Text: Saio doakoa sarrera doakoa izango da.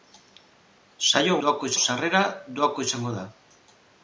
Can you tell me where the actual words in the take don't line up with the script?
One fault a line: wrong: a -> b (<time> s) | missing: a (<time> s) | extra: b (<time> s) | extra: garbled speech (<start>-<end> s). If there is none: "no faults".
no faults